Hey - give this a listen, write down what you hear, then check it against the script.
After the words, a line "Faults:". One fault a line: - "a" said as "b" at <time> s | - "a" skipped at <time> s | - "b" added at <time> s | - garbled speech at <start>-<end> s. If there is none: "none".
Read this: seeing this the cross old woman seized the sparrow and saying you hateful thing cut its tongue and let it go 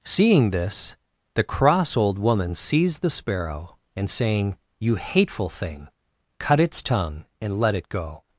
seeing this the cross old woman seized the sparrow and saying you hateful thing cut its tongue and let it go
Faults:
none